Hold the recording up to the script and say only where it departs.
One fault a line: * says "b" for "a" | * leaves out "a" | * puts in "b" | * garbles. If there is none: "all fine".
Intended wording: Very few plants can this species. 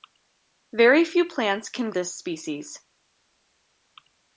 all fine